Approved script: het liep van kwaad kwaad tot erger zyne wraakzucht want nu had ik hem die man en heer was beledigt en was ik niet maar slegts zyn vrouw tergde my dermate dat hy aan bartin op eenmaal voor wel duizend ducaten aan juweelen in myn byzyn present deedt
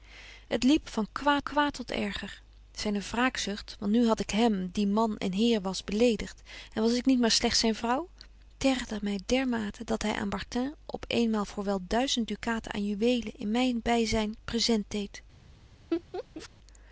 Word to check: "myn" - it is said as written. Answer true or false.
true